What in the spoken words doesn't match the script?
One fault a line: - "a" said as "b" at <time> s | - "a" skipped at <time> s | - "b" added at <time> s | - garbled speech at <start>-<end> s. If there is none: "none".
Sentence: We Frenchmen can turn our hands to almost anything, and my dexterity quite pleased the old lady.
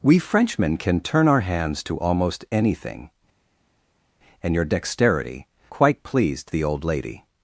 - "my" said as "your" at 4.6 s